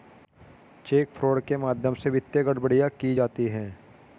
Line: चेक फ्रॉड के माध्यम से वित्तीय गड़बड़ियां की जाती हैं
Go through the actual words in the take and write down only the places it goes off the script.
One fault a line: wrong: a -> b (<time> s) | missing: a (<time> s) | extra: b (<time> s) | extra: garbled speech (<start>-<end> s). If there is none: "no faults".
no faults